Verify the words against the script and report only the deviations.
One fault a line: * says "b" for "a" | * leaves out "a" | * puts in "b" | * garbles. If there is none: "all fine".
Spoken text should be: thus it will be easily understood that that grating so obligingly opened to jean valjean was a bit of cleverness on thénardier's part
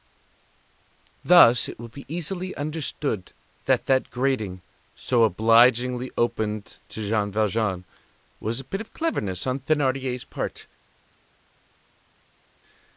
all fine